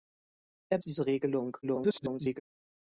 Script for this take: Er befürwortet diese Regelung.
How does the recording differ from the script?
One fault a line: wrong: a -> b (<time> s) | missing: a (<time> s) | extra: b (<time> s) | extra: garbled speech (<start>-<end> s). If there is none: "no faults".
missing: befürwortet (0.8 s)
extra: garbled speech (1.6-2.4 s)